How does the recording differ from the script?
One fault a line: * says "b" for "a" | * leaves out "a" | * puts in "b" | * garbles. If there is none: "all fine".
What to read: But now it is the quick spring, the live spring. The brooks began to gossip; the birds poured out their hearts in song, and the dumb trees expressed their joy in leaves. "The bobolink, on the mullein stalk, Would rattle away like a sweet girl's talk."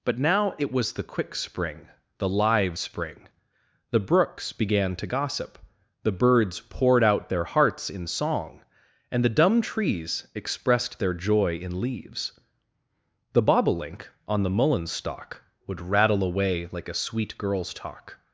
* says "was" for "is"